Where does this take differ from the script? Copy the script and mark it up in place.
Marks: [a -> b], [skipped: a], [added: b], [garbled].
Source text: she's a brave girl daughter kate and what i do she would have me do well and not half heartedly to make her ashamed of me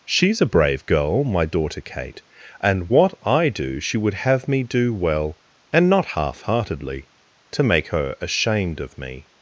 she's a brave girl [added: my] daughter kate and what i do she would have me do well and not half heartedly to make her ashamed of me